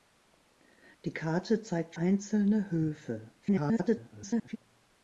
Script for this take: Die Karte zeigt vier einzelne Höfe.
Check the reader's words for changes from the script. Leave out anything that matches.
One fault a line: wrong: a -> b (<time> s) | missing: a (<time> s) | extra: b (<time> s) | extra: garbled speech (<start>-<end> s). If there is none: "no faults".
missing: vier (1.9 s)
extra: garbled speech (3.4-4.6 s)